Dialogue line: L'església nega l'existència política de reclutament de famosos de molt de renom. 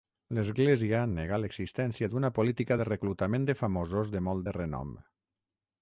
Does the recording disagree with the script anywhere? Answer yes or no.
yes